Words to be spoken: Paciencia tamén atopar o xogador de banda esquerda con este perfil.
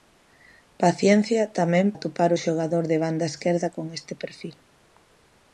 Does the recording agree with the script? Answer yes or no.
yes